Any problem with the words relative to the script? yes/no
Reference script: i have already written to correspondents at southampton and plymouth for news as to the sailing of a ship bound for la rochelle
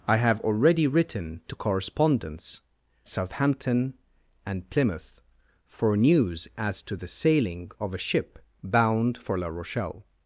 yes